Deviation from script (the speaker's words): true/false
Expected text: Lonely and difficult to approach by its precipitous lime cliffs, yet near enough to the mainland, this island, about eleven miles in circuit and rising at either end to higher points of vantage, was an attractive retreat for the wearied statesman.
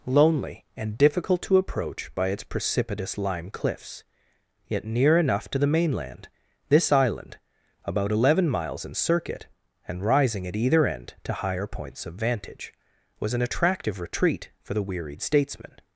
false